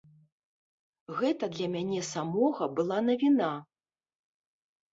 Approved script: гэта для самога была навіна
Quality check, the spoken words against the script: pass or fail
fail